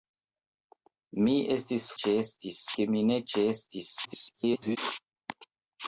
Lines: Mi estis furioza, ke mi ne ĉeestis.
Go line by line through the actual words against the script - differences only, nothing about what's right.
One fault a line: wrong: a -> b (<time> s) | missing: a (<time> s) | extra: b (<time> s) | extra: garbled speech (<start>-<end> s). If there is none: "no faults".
wrong: furioza -> ĉeestis (2.0 s)
extra: garbled speech (4.0-4.8 s)